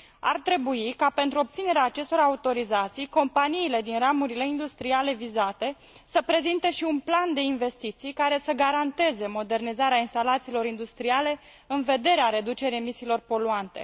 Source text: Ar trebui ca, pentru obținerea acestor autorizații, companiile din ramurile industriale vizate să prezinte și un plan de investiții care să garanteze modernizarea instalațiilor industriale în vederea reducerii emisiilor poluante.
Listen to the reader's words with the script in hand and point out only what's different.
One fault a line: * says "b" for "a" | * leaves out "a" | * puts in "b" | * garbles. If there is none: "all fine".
all fine